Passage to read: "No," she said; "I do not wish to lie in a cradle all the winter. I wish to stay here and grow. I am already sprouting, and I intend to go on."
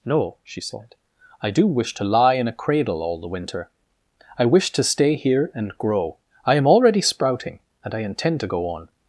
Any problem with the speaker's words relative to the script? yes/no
yes